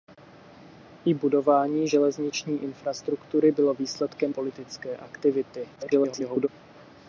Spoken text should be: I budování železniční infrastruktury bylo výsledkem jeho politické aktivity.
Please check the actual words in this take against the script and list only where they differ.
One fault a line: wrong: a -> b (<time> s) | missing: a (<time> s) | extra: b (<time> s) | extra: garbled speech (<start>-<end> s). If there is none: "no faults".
missing: jeho (4.3 s)
extra: garbled speech (5.8-6.5 s)